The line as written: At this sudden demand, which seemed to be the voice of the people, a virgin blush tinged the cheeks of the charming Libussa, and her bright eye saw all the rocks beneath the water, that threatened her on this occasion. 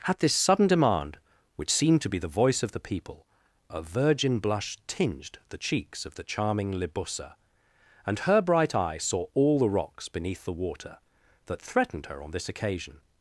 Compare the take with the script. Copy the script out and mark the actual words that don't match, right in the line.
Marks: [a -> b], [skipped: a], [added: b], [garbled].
At this sudden demand, which seemed to be the voice of the people, a virgin blush tinged the cheeks of the charming Libussa, and her bright eye saw all the rocks beneath the water, that threatened her on this occasion.